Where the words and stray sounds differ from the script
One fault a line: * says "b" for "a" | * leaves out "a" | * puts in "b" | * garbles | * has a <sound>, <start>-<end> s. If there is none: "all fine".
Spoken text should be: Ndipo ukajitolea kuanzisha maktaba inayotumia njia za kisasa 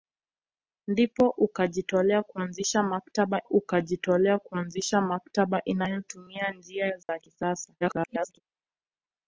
* puts in "ukajitolea kuanzisha maktaba"
* has a dropout, 7.0-7.1 s
* garbles